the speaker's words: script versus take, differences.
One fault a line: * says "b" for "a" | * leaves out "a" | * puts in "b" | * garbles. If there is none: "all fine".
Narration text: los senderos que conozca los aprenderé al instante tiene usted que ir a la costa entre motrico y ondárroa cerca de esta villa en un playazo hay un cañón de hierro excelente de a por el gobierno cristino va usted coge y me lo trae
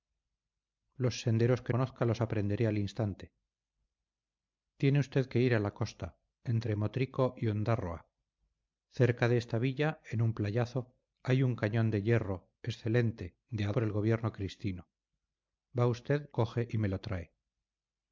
all fine